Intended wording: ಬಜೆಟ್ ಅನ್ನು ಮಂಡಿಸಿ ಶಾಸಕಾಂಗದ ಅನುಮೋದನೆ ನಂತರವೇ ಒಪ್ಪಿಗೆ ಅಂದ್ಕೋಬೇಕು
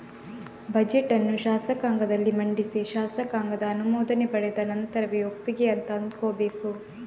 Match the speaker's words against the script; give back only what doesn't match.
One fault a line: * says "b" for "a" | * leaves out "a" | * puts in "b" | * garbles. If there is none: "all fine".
* puts in "ಶಾಸಕಾಂಗದಲ್ಲಿ"
* puts in "ಪಡೆದ"
* puts in "ಅಂತ"